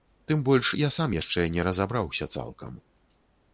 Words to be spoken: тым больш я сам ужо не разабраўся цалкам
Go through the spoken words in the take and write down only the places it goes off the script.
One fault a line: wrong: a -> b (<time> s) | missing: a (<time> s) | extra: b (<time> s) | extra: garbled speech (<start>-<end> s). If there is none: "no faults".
wrong: ужо -> яшчэ (1.1 s)